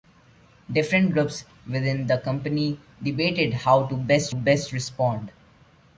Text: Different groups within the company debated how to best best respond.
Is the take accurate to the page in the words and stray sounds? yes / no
yes